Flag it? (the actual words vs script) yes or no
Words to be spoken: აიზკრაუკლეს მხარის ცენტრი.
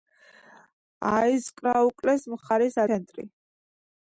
no